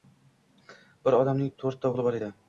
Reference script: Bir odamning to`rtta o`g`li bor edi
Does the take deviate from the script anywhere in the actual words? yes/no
no